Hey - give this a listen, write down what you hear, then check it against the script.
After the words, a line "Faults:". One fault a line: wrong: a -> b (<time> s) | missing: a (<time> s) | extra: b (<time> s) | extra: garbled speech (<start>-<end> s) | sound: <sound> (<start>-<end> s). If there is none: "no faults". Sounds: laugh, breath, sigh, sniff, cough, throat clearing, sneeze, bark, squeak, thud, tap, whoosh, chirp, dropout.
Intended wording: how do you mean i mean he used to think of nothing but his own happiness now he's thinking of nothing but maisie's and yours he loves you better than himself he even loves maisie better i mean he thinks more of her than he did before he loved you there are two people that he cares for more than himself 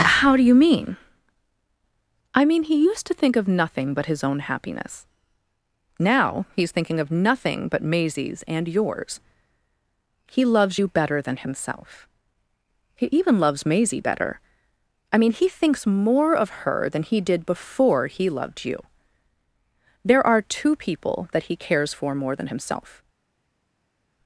how do you mean i mean he used to think of nothing but his own happiness now he's thinking of nothing but maisie's and yours he loves you better than himself he even loves maisie better i mean he thinks more of her than he did before he loved you there are two people that he cares for more than himself
Faults:
no faults